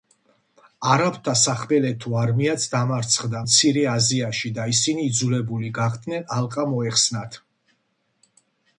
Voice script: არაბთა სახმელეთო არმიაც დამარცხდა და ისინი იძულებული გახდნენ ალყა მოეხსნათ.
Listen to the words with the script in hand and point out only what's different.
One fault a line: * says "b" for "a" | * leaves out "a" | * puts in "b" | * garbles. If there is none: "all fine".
* puts in "მცირე აზიაში"